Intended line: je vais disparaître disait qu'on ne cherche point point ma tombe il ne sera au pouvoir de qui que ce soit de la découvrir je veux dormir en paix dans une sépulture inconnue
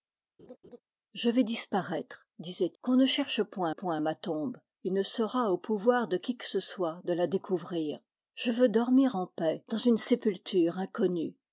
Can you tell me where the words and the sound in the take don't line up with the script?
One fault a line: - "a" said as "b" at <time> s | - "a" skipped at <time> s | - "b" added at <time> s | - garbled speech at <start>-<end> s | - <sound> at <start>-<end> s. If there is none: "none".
- laugh at 0.4-0.8 s